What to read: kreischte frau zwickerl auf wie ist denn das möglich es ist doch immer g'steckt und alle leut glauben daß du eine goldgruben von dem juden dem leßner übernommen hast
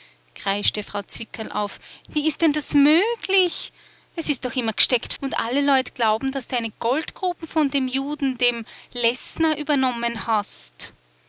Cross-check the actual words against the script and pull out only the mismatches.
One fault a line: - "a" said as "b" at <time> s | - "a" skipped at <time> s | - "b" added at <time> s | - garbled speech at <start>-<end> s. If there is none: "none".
none